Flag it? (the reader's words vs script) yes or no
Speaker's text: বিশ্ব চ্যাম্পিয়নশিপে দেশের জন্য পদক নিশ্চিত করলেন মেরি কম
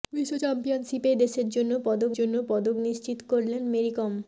yes